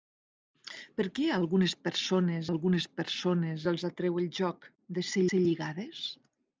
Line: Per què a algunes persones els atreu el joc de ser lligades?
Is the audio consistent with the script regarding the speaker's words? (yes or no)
no